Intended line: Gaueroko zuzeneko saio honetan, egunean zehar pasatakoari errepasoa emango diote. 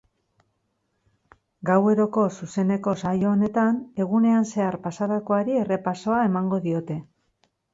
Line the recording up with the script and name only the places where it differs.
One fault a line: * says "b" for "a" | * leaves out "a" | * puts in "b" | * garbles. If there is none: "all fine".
all fine